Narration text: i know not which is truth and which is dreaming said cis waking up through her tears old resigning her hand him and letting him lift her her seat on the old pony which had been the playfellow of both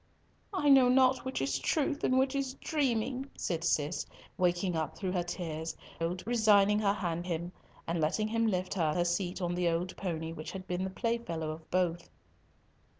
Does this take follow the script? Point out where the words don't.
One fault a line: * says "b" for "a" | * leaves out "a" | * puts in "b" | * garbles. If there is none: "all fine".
all fine